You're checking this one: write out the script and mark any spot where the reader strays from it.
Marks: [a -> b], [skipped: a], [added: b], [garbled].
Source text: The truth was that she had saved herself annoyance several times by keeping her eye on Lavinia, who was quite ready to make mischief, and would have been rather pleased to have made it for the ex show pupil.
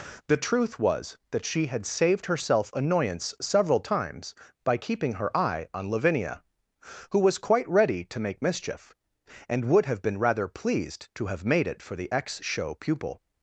The truth was that she had saved herself annoyance several times by keeping her eye on Lavinia, who was quite ready to make mischief, and would have been rather pleased to have made it for the ex show pupil.